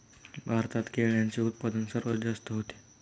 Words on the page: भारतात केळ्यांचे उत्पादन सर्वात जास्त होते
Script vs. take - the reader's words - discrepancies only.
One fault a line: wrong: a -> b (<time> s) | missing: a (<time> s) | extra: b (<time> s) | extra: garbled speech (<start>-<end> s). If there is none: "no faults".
no faults